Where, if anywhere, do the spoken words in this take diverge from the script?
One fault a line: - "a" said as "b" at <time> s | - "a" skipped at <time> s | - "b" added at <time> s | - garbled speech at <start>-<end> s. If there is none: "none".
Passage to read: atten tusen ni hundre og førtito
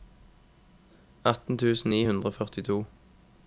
none